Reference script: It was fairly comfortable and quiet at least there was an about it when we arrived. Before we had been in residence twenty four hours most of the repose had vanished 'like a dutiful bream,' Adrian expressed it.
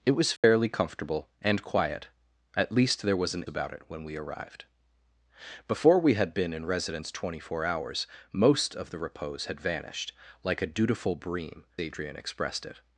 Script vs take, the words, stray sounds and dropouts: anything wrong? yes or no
yes